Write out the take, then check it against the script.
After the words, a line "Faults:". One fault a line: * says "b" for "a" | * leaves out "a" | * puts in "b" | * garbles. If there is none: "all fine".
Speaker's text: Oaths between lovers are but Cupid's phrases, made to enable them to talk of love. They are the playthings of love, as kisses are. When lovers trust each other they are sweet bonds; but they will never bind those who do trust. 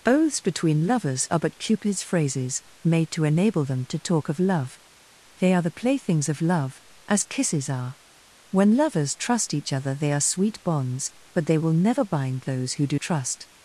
Oaths between lovers are but Cupid's phrases, made to enable them to talk of love. They are the playthings of love, as kisses are. When lovers trust each other they are sweet bonds; but they will never bind those who do trust.
Faults:
all fine